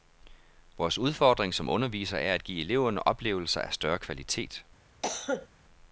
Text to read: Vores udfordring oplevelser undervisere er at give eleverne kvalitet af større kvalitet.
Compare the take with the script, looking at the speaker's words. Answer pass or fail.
fail